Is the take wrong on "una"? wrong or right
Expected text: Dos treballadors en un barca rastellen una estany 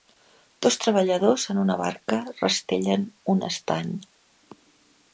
wrong